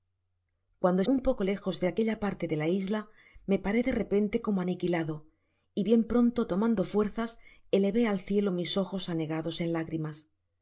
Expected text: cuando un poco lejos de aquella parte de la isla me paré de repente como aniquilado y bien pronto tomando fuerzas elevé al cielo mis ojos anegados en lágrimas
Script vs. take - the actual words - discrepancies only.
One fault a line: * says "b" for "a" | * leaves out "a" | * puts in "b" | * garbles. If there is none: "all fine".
all fine